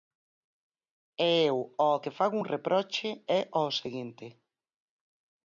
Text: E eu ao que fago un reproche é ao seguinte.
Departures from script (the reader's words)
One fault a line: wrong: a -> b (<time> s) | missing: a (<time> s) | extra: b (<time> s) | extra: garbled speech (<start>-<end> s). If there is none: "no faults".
no faults